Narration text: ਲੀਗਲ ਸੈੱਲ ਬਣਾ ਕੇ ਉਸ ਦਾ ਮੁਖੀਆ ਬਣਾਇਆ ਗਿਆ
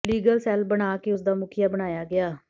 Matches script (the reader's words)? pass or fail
pass